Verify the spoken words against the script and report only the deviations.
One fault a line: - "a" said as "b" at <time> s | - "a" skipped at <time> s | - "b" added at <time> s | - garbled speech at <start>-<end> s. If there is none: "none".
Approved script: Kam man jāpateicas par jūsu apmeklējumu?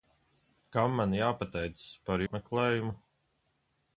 - "jūsu" skipped at 2.3 s